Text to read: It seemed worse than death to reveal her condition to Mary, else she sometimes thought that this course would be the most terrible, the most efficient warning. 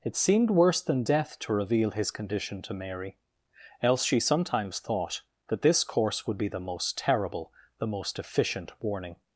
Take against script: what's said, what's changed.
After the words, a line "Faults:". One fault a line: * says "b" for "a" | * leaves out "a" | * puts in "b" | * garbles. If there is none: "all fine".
It seemed worse than death to reveal his condition to Mary, else she sometimes thought that this course would be the most terrible, the most efficient warning.
Faults:
* says "his" for "her"